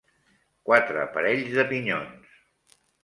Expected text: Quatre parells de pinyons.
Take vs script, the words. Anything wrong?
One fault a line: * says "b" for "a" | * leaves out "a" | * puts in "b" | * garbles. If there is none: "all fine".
all fine